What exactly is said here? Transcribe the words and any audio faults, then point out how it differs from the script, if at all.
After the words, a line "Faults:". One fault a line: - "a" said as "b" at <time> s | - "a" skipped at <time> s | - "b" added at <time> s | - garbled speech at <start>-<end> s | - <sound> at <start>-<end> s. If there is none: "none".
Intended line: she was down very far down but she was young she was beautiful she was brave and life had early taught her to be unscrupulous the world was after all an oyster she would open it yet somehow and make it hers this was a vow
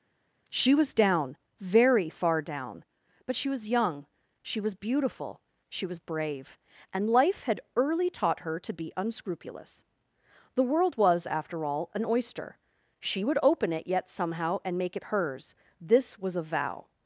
she was down very far down but she was young she was beautiful she was brave and life had early taught her to be unscrupulous the world was after all an oyster she would open it yet somehow and make it hers this was a vow
Faults:
none